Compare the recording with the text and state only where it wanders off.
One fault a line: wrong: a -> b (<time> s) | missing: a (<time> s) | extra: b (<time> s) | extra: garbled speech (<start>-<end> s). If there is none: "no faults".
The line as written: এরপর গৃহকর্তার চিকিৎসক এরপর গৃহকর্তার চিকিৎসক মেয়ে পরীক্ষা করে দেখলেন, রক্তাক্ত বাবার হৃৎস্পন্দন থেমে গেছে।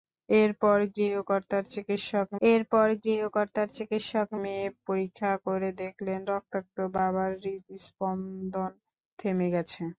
no faults